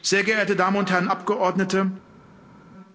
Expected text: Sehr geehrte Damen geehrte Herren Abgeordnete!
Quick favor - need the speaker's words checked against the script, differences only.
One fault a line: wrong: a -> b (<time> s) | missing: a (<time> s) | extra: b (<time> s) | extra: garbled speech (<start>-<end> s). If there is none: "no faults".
wrong: geehrte -> und (0.8 s)